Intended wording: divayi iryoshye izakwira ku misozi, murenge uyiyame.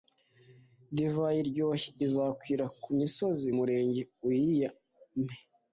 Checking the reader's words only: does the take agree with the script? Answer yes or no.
yes